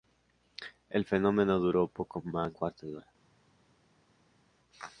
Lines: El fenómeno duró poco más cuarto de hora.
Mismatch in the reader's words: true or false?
false